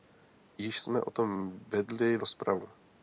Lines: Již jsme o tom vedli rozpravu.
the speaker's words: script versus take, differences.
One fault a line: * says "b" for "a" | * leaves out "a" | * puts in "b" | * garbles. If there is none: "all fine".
all fine